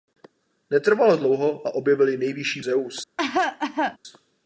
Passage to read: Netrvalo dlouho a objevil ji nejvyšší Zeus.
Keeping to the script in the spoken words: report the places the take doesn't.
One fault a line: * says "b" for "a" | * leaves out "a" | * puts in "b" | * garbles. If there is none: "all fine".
all fine